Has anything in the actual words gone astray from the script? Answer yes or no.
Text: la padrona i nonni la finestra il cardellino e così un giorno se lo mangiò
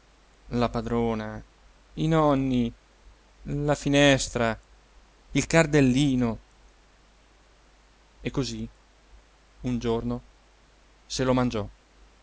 no